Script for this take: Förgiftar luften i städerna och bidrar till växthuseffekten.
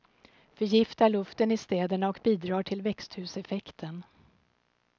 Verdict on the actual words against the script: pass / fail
pass